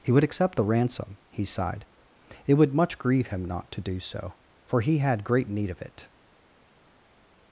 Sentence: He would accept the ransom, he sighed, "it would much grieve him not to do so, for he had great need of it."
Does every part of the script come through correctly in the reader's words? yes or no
yes